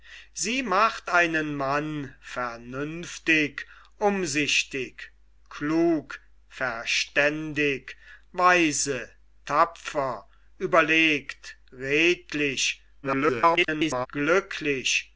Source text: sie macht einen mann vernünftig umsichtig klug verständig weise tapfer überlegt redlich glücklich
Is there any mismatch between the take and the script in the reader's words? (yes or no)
yes